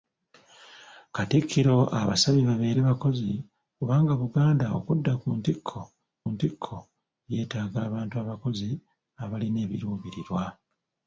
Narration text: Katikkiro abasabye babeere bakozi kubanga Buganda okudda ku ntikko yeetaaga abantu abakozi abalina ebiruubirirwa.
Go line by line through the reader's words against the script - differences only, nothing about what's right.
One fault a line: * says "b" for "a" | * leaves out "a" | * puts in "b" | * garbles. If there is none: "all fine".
* puts in "ntikko"